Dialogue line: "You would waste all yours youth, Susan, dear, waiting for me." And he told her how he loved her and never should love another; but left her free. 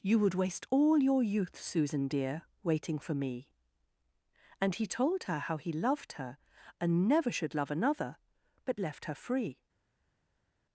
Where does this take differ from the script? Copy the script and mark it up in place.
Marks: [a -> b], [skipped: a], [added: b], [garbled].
"You would waste all [yours -> your] youth, Susan, dear, waiting for me." And he told her how he loved her and never should love another; but left her free.